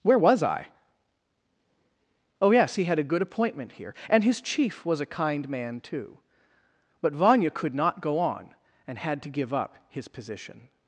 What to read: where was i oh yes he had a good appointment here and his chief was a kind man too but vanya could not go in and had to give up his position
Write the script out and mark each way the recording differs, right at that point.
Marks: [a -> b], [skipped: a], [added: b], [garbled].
where was i oh yes he had a good appointment here and his chief was a kind man too but vanya could not go [in -> on] and had to give up his position